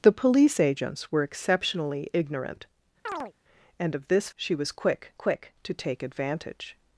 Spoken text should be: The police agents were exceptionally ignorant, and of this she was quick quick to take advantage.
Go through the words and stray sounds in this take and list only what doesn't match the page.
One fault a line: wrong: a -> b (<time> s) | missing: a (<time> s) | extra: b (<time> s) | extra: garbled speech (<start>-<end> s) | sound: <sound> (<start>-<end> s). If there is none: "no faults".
sound: chirp (3.1-3.3 s)